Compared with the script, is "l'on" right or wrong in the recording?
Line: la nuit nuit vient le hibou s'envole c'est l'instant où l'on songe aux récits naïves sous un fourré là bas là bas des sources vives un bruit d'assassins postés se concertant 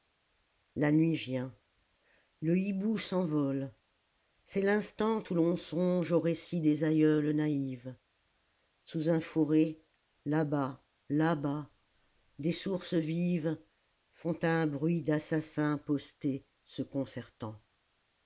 right